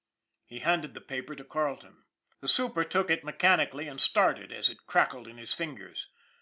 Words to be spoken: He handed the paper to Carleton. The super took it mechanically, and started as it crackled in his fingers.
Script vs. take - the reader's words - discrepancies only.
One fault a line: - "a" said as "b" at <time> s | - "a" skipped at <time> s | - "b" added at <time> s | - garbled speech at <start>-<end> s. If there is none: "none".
none